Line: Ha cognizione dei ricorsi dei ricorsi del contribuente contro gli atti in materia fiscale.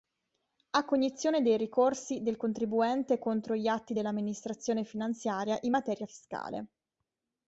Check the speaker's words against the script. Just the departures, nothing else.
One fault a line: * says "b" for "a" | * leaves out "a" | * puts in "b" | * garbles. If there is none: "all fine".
* leaves out "dei ricorsi"
* puts in "dell'Amministrazione finanziaria"